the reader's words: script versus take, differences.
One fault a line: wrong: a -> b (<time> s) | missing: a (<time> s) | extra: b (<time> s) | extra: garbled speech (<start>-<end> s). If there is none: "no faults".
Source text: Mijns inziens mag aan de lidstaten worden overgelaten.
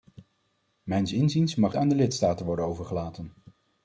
no faults